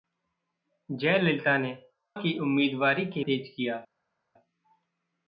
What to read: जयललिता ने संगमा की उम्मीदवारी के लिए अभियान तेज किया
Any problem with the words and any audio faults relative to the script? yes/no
yes